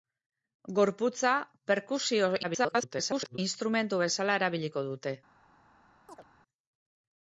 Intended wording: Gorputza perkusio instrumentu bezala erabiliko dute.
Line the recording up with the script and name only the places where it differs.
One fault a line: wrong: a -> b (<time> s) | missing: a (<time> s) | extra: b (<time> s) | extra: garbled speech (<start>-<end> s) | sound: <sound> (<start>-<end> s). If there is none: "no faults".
extra: garbled speech (2.4-3.4 s)
sound: chirp (6.1-6.2 s)